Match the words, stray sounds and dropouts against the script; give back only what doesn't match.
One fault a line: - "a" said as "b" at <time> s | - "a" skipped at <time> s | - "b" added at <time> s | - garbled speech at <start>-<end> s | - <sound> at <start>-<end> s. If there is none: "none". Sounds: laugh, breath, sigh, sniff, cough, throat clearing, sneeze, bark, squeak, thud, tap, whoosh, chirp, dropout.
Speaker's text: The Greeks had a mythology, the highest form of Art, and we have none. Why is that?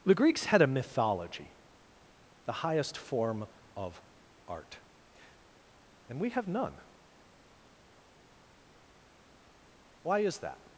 none